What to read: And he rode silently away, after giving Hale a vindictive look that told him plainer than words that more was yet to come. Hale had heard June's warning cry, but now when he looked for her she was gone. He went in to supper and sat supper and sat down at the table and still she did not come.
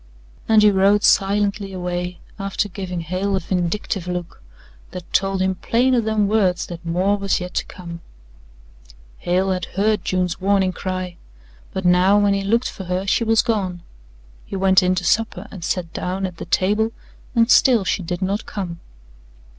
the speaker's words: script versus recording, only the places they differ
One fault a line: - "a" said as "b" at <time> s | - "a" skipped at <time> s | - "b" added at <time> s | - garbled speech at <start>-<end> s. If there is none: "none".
- "supper and sat" skipped at 16.0 s